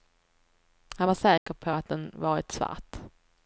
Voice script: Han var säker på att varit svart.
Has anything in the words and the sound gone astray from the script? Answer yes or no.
yes